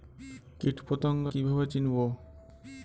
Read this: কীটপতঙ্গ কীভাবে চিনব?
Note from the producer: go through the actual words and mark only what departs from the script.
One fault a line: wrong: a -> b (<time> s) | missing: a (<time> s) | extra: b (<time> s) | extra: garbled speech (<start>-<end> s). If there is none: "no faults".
no faults